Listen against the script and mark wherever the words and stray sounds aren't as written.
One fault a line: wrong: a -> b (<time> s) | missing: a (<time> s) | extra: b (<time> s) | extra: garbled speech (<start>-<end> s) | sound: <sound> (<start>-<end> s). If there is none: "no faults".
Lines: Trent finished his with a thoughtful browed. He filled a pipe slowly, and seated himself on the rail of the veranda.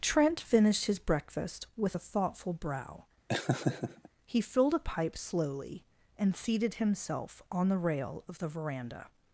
extra: breakfast (1.0 s)
wrong: browed -> brow (2.5 s)
sound: laugh (3.3-4.1 s)